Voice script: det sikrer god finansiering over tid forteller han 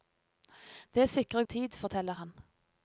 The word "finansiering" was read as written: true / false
false